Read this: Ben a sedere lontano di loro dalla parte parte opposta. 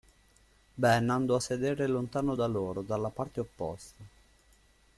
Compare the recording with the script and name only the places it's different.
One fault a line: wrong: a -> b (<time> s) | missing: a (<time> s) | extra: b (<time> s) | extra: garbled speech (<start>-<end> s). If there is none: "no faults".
extra: andò (1.1 s)
wrong: di -> da (2.3 s)
missing: parte (3.4 s)